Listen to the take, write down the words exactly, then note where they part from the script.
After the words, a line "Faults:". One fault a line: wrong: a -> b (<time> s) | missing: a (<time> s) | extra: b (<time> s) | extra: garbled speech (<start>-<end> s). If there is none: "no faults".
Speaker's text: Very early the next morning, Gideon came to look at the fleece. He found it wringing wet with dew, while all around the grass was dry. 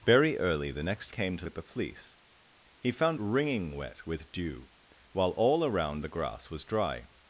Very early the next came to at the fleece. He found wringing wet with dew, while all around the grass was dry.
Faults:
missing: morning Gideon (1.1 s)
missing: look (1.5 s)
missing: it (3.2 s)